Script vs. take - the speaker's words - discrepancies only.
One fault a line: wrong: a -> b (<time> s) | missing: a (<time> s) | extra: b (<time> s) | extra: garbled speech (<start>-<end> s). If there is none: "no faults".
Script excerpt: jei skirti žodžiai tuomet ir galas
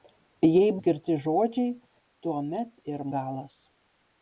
no faults